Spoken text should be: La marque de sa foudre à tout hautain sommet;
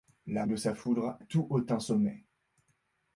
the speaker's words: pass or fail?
fail